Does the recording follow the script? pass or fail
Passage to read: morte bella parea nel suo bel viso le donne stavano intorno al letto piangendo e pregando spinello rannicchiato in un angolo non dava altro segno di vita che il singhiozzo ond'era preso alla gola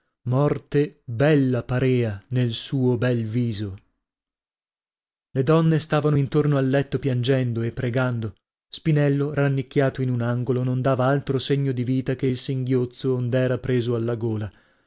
pass